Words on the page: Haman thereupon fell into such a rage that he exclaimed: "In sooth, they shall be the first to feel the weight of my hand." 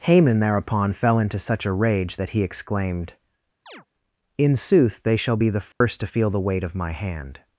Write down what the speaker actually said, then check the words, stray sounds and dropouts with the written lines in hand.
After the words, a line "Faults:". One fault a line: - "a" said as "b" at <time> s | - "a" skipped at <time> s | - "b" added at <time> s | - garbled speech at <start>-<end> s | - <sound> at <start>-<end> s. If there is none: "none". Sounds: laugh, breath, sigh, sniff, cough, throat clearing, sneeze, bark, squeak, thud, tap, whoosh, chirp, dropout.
Haman thereupon fell into such a rage that he exclaimed: "In sooth, they shall be the first to feel the weight of my hand."
Faults:
- chirp at 3.7-3.9 s
- dropout at 5.7-5.8 s